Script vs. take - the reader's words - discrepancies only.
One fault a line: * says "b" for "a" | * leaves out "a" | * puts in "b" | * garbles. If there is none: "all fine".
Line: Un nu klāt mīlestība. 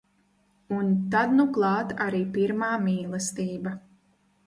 * puts in "tad"
* puts in "arī pirmā"